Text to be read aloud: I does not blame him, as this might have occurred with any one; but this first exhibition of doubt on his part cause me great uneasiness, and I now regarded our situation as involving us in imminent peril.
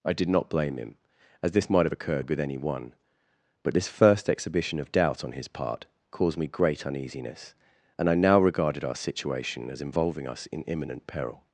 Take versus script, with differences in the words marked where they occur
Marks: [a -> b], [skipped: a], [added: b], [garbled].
I [does -> did] not blame him, as this might have occurred with any one; but this first exhibition of doubt on his part [cause -> caused] me great uneasiness, and I now regarded our situation as involving us in imminent peril.